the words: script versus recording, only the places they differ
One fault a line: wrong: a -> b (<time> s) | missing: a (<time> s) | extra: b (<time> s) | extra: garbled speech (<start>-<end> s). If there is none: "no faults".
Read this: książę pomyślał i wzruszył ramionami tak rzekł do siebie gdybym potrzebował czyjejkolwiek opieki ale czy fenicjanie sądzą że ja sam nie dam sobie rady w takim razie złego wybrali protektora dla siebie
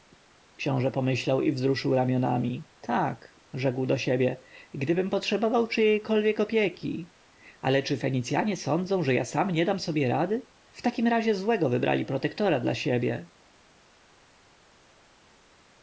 no faults